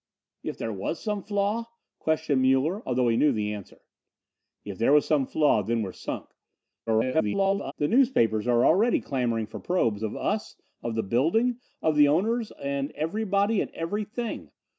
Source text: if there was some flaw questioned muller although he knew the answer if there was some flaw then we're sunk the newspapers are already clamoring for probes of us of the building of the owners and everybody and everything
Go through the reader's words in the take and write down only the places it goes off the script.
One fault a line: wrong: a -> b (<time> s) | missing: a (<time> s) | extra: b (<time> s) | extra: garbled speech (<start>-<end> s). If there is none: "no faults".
extra: garbled speech (6.9-7.7 s)